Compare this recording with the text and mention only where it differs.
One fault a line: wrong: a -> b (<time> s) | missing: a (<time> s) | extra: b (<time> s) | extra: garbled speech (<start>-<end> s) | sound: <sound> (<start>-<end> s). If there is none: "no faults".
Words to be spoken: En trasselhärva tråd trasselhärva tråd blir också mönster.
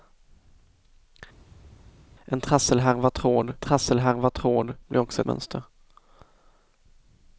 no faults